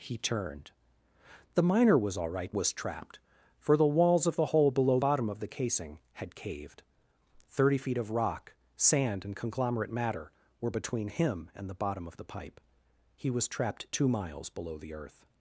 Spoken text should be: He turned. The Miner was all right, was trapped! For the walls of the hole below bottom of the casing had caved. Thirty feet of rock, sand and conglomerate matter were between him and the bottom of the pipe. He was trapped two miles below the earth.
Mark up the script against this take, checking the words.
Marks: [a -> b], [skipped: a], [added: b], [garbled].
He turned. The Miner was all right, was trapped! For the walls of the hole below bottom of the casing had caved. Thirty feet of rock, sand and conglomerate matter were between him and the bottom of the pipe. He was trapped two miles below the earth.